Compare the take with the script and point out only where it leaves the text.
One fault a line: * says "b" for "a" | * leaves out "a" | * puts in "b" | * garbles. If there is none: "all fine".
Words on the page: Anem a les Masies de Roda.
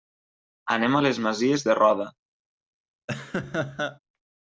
all fine